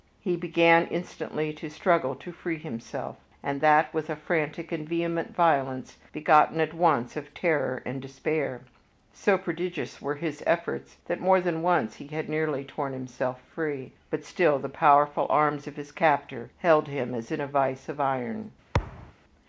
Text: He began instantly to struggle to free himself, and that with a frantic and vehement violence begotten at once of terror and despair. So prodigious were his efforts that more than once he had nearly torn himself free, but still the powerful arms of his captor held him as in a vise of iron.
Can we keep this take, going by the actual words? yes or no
yes